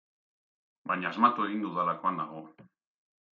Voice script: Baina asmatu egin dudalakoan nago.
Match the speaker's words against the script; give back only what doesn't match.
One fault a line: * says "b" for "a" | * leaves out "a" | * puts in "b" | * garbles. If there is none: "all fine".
all fine